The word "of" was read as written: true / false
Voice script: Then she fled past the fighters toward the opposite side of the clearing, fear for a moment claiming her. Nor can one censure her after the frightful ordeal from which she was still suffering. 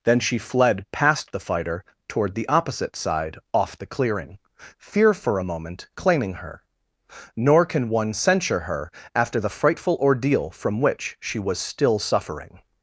false